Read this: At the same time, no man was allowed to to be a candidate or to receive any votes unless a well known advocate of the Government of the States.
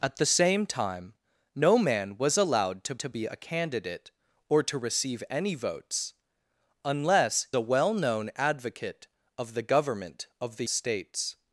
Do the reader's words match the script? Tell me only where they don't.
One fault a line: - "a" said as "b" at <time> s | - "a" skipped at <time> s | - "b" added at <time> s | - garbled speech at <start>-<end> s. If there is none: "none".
none